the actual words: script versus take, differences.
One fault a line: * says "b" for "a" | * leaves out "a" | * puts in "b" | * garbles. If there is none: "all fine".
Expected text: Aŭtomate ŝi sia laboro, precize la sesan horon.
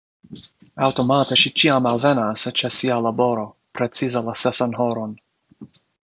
* puts in "ĉiam alvenas ĉe"